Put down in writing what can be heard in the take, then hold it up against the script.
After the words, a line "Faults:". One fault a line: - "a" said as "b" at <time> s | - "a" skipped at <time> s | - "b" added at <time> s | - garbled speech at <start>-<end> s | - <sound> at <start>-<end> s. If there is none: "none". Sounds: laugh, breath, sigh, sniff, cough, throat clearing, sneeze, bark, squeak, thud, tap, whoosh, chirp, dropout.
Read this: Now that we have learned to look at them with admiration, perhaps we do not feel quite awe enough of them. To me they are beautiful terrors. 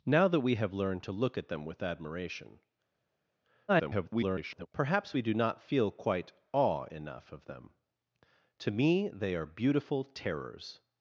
Now that we have learned to look at them with admiration, [garbled] perhaps we do not feel quite awe enough of them. To me they are beautiful terrors.
Faults:
- garbled speech at 3.7-4.7 s